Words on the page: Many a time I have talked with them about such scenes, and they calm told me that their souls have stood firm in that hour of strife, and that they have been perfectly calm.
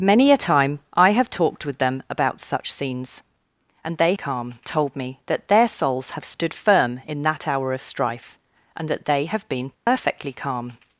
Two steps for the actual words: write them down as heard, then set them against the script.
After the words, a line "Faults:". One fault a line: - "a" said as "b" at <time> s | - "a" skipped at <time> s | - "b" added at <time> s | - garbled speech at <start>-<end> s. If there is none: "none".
Many a time I have talked with them about such scenes, and they calm told me that their souls have stood firm in that hour of strife, and that they have been perfectly calm.
Faults:
none